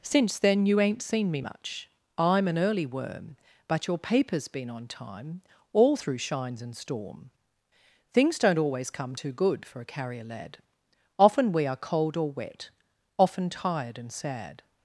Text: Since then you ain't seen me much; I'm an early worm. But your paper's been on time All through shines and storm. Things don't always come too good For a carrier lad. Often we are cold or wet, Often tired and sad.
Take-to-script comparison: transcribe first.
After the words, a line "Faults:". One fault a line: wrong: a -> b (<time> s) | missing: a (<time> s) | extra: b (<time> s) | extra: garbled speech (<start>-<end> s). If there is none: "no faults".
Since then you ain't seen me much; I'm an early worm. But your paper's been on time All through shines and storm. Things don't always come too good For a carrier lad. Often we are cold or wet, Often tired and sad.
Faults:
no faults